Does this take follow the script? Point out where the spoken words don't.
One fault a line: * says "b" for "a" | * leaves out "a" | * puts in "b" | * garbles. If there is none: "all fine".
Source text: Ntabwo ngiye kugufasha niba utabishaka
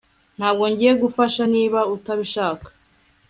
all fine